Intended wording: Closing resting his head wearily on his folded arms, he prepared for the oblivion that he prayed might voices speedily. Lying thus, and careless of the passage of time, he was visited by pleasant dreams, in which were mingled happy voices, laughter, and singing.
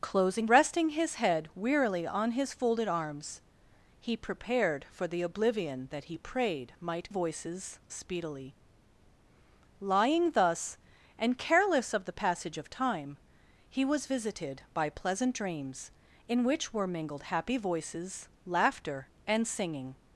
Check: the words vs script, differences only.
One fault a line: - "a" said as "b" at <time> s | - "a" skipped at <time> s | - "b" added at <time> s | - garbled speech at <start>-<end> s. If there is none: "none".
none